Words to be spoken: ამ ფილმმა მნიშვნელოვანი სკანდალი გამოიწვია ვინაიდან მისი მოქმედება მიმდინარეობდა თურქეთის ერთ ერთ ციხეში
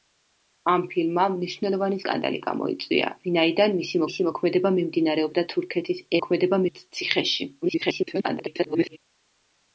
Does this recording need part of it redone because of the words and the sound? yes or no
yes